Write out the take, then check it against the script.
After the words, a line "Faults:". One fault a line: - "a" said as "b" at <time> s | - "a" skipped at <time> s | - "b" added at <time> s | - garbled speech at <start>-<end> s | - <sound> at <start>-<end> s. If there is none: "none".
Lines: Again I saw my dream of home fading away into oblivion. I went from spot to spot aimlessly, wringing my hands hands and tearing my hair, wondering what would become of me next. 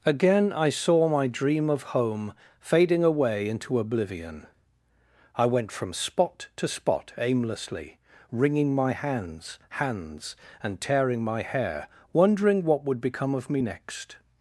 Again I saw my dream of home fading away into oblivion. I went from spot to spot aimlessly, wringing my hands hands and tearing my hair, wondering what would become of me next.
Faults:
none